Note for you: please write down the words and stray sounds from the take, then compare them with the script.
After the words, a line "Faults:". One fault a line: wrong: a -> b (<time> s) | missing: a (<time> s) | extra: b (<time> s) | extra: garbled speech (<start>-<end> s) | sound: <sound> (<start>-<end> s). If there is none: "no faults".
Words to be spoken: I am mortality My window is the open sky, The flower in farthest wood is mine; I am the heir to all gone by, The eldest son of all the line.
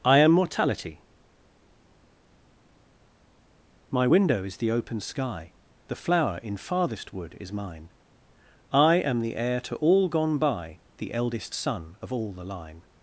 I am mortality My window is the open sky, The flower in farthest wood is mine; I am the heir to all gone by, The eldest son of all the line.
Faults:
no faults